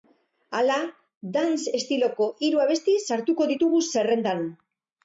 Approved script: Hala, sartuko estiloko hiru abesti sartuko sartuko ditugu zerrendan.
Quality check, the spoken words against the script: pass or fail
fail